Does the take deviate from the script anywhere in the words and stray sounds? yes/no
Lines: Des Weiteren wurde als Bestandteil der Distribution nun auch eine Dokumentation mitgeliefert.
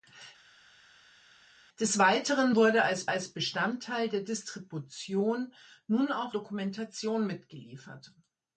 yes